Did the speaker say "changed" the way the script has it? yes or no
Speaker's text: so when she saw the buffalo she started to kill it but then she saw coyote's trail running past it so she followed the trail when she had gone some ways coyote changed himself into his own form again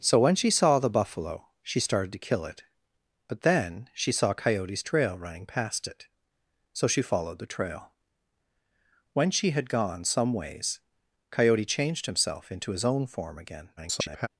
yes